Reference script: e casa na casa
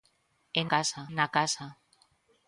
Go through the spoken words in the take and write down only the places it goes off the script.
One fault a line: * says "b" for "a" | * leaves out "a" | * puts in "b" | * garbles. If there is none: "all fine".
all fine